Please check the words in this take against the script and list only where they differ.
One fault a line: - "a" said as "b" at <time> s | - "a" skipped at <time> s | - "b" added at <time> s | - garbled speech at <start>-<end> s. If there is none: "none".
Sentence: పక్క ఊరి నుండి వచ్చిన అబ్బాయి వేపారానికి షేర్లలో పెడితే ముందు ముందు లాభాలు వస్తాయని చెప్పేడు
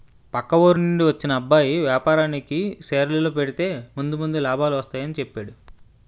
none